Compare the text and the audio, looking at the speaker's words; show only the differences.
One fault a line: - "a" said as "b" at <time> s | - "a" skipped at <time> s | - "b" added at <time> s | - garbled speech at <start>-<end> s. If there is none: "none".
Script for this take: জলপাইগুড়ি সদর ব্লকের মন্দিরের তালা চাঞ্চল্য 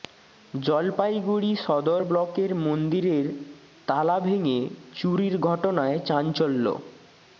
- "ভেঙে চুরির ঘটনায়" added at 4.2 s